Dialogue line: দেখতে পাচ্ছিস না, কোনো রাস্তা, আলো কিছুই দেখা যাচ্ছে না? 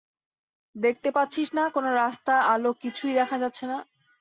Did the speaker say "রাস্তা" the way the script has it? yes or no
yes